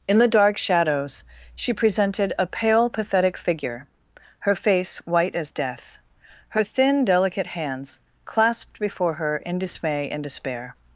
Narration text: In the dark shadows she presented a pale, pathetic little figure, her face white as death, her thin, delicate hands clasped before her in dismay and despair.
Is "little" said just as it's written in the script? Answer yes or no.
no